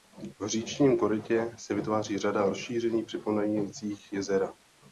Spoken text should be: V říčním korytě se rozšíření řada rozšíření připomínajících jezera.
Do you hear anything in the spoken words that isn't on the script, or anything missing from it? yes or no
yes